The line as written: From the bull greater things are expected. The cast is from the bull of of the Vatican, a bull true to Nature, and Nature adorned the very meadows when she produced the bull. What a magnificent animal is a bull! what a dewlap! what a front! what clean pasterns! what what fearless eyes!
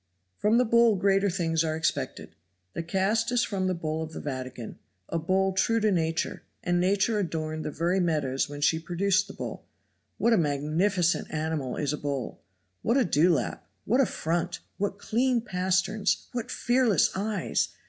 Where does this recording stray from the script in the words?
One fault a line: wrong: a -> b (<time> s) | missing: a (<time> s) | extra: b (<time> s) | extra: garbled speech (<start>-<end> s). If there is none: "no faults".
missing: of (4.1 s)
missing: what (16.5 s)